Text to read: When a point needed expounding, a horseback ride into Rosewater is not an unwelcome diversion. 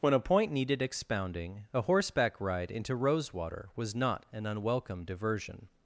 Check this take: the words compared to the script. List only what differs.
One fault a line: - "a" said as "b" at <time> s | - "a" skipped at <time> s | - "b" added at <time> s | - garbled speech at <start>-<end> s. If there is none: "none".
- "is" said as "was" at 3.8 s